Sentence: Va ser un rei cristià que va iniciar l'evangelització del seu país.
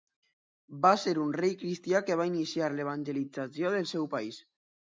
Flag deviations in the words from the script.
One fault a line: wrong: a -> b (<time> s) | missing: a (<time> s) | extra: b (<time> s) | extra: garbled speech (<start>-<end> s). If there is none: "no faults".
no faults